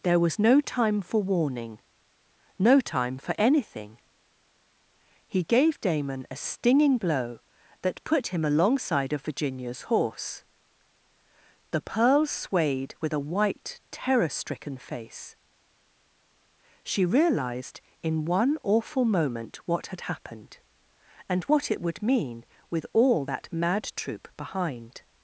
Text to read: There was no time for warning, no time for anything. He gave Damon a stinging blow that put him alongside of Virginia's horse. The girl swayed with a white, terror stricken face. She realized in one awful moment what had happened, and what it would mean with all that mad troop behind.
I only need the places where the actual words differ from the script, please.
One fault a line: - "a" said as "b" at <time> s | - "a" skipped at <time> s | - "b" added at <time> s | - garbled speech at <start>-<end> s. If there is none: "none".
- "girl" said as "pearl" at 11.8 s